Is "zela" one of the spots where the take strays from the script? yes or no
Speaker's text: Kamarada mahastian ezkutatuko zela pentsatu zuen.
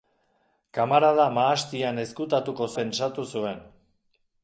yes